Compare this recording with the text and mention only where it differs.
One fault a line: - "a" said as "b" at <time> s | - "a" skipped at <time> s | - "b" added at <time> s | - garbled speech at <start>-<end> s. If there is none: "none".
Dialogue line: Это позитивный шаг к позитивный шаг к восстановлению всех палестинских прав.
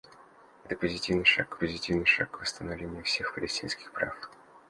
none